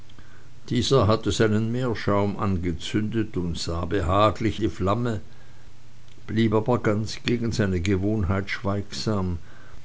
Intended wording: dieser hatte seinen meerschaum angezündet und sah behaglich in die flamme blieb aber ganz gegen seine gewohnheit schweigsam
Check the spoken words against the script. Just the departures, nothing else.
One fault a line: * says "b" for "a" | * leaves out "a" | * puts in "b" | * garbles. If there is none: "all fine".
* leaves out "in"